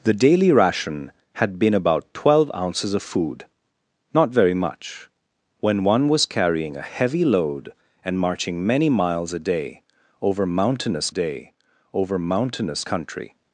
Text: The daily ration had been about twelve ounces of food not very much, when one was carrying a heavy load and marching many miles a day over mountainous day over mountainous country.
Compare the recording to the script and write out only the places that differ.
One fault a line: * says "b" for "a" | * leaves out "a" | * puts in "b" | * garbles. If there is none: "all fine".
all fine